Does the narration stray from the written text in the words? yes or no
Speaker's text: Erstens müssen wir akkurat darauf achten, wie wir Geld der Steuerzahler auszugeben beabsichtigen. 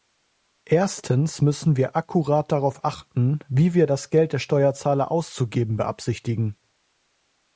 yes